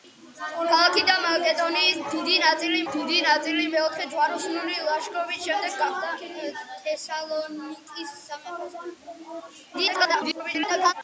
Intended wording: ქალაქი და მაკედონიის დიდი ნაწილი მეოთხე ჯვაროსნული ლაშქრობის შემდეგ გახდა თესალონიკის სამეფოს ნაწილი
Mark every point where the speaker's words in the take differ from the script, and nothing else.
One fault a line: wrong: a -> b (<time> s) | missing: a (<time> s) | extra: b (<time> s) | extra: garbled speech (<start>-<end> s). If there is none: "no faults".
extra: დიდი ნაწილი (2.9 s)
extra: garbled speech (9.7-10.9 s)